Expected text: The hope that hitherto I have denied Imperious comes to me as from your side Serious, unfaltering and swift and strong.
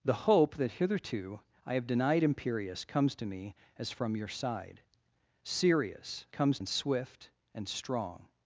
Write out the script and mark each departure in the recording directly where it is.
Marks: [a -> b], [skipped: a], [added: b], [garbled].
The hope that hitherto I have denied Imperious comes to me as from your side Serious, [unfaltering -> comes] and swift and strong.